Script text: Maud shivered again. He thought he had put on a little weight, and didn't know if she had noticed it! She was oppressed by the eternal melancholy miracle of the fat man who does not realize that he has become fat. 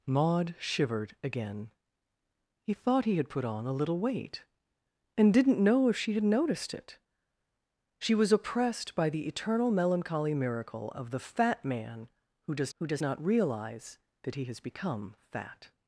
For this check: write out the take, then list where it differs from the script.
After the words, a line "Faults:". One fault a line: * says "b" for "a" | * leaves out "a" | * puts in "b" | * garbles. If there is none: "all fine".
Maud shivered again. He thought he had put on a little weight, and didn't know if she had noticed it! She was oppressed by the eternal melancholy miracle of the fat man who does who does not realize that he has become fat.
Faults:
* puts in "who does"